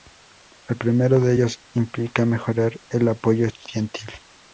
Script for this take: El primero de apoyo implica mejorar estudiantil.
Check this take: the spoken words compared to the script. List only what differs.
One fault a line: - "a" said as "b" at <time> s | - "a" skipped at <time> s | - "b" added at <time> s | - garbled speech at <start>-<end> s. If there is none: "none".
- "apoyo" said as "ellos" at 1.3 s
- "el apoyo" added at 2.9 s